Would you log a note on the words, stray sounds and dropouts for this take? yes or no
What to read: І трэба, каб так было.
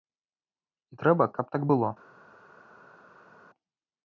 no